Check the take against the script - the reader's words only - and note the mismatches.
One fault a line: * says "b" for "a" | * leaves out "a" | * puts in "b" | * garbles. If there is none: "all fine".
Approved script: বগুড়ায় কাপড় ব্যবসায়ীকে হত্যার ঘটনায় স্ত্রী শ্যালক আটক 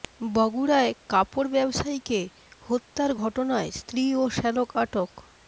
* puts in "ও"